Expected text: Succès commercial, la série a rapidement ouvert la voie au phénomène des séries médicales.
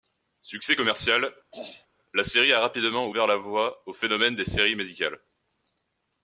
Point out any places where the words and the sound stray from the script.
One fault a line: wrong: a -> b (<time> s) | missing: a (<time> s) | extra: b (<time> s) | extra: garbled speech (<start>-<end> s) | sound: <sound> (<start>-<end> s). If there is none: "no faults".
sound: throat clearing (1.5-1.9 s)